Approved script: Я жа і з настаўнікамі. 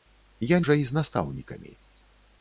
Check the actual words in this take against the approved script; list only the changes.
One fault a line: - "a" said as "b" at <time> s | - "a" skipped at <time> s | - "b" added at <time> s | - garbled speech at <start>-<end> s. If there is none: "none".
none